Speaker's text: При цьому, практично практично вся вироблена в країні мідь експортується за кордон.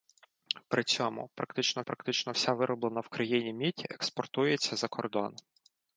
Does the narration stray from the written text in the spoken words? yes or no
no